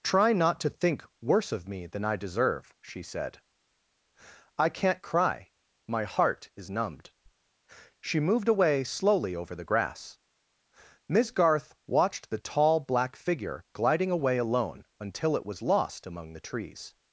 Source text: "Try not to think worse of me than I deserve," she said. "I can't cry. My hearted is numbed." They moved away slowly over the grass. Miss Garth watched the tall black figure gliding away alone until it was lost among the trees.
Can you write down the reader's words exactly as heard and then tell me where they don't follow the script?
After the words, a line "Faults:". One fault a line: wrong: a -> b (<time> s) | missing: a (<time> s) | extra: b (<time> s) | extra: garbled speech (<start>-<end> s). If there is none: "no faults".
"Try not to think worse of me than I deserve," she said. "I can't cry. My heart is numbed." She moved away slowly over the grass. Miss Garth watched the tall black figure gliding away alone until it was lost among the trees.
Faults:
wrong: hearted -> heart (6.0 s)
wrong: They -> She (8.0 s)